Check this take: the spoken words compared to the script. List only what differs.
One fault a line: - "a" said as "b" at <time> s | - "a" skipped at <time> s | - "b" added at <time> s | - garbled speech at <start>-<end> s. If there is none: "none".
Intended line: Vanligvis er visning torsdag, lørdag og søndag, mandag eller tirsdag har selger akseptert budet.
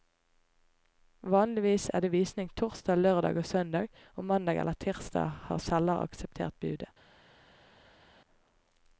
- "det" added at 2.0 s
- "og" added at 4.1 s